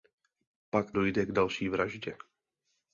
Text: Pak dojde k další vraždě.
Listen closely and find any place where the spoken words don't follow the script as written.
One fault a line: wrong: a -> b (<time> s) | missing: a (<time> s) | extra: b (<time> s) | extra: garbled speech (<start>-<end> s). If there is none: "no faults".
no faults